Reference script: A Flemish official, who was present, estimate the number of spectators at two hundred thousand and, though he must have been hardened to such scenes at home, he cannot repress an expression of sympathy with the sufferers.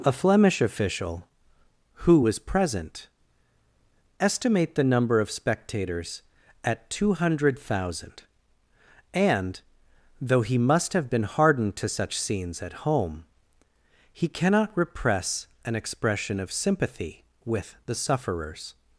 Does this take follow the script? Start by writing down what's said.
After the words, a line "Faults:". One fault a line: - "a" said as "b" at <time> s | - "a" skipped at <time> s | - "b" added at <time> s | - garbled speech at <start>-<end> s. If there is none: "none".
A Flemish official, who was present, estimate the number of spectators at two hundred thousand and, though he must have been hardened to such scenes at home, he cannot repress an expression of sympathy with the sufferers.
Faults:
none